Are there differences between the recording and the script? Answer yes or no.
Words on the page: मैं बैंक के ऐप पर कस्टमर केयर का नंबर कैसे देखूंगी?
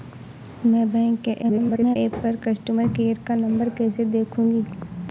yes